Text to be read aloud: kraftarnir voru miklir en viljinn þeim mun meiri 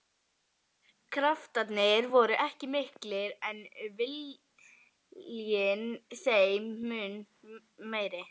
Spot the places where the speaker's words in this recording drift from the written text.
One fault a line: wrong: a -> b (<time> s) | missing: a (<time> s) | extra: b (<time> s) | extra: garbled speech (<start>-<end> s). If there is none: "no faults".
extra: ekki (2.4 s)